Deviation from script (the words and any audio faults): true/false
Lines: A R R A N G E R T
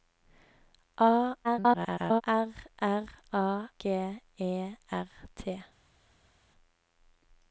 true